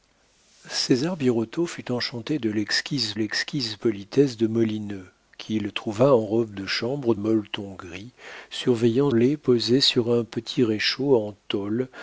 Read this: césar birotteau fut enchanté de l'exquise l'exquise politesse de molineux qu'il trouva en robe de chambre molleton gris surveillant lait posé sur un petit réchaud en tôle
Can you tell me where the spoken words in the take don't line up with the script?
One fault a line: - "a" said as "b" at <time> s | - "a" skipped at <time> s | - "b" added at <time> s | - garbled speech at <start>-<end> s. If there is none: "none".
none